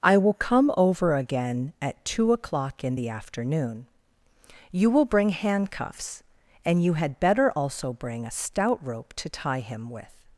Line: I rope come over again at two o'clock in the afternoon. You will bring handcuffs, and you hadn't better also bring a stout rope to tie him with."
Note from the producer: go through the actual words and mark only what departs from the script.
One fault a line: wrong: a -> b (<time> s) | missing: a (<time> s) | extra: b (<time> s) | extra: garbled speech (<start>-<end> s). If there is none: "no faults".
wrong: rope -> will (0.2 s)
wrong: hadn't -> had (6.9 s)